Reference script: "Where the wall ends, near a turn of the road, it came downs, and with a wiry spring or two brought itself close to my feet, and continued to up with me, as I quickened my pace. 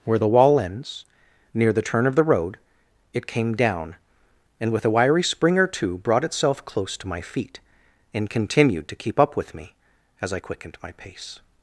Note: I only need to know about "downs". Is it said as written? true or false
false